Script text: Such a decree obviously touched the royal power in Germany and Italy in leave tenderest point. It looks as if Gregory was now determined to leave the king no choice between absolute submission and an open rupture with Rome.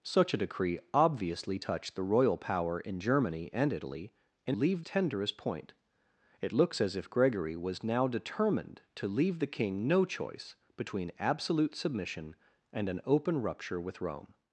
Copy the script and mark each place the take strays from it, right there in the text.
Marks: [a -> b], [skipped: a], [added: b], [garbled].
Such a decree obviously touched the royal power in Germany and Italy in leave tenderest point. It looks as if Gregory was now determined to leave the king no choice between absolute submission and an open rupture with Rome.